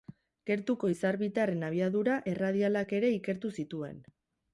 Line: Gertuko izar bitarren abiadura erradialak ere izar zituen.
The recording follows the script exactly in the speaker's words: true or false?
false